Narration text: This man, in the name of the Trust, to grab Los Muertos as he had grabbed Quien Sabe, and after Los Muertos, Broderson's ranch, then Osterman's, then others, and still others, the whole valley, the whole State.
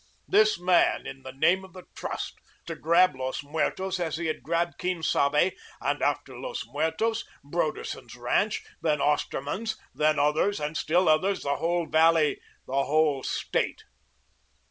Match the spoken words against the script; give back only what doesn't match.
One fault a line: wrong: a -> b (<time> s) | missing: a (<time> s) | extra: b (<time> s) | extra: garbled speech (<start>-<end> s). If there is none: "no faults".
no faults